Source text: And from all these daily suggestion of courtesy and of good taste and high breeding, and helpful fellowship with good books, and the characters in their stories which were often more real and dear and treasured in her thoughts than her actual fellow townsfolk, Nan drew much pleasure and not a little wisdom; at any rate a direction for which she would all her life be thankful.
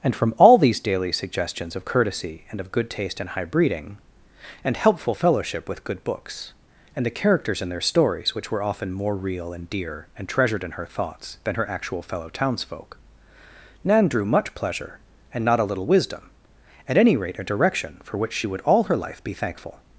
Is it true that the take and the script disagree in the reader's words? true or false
true